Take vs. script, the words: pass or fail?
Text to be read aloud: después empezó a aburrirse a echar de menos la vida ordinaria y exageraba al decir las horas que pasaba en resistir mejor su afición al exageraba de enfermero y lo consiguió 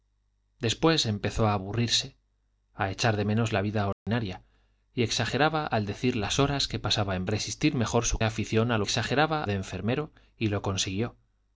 pass